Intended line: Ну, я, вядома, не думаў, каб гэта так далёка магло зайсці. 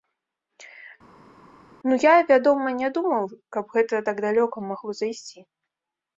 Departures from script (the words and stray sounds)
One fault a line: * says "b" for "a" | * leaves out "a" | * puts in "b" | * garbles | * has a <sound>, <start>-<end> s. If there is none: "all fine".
all fine